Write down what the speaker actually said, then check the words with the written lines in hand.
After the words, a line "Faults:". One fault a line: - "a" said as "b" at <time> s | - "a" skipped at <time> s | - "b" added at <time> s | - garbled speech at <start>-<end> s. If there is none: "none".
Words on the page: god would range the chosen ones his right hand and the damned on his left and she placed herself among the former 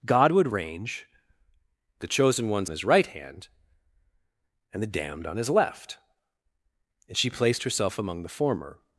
god would range the chosen ones his right hand and the damned on his left and she placed herself among the former
Faults:
none